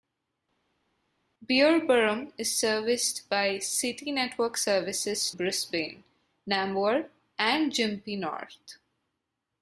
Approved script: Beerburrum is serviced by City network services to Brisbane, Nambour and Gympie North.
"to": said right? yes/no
no